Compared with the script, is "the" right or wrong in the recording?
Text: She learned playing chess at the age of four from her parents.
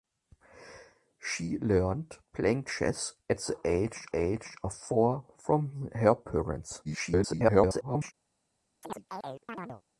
right